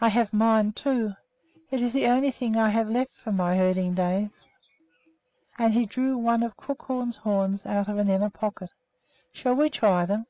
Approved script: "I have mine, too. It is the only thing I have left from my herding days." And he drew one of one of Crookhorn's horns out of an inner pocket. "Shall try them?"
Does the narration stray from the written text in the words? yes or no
yes